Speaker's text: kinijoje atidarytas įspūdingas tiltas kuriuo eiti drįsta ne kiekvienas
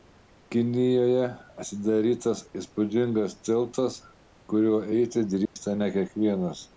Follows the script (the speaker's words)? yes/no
yes